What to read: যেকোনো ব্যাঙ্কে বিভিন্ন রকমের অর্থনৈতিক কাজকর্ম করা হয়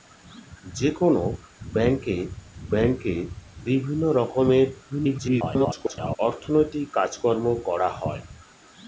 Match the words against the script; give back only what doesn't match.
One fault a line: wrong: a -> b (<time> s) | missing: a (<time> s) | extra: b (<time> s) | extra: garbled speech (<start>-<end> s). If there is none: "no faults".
extra: ব্যাঙ্কে (2.7 s)
extra: garbled speech (4.9-6.2 s)